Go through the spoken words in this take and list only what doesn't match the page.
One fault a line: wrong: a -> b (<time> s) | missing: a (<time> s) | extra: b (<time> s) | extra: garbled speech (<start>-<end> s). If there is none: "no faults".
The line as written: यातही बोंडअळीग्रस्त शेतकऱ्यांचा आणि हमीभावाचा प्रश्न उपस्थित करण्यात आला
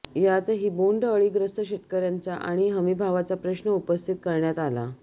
no faults